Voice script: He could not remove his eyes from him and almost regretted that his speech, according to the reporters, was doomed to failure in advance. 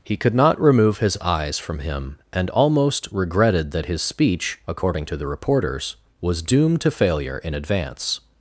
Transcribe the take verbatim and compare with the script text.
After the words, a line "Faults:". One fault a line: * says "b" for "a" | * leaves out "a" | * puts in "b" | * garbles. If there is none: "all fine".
He could not remove his eyes from him and almost regretted that his speech, according to the reporters, was doomed to failure in advance.
Faults:
all fine